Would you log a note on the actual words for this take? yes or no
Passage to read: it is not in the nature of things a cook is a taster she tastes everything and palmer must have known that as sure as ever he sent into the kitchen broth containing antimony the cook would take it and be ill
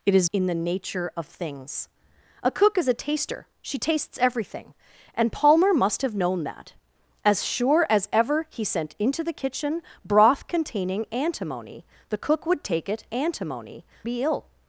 yes